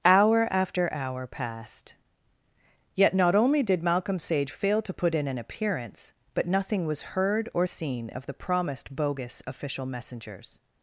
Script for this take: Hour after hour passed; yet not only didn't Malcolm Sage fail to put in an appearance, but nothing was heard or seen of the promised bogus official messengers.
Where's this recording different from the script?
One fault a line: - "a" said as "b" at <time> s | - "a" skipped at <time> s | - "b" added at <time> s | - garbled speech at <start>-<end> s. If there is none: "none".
- "didn't" said as "did" at 3.6 s